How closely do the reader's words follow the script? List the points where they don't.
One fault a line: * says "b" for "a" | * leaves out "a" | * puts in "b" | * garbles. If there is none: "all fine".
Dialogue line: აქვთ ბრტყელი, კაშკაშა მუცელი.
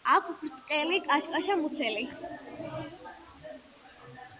all fine